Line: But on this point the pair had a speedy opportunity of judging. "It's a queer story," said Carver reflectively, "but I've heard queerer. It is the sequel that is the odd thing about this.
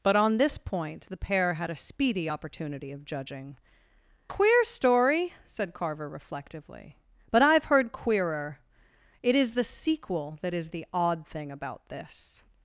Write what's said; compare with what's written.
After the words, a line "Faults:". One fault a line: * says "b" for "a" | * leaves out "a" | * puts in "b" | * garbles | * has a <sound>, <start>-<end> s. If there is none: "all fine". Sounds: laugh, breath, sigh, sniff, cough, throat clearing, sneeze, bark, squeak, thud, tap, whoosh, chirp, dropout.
But on this point the pair had a speedy opportunity of judging. "Queer story," said Carver reflectively, "but I've heard queerer. It is the sequel that is the odd thing about this.
Faults:
* leaves out "It's a"